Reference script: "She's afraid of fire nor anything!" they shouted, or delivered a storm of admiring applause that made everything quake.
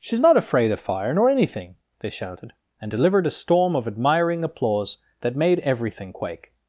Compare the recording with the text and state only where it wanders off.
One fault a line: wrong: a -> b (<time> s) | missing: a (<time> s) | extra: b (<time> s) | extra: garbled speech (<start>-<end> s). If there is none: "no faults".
extra: not (0.2 s)
wrong: or -> and (2.8 s)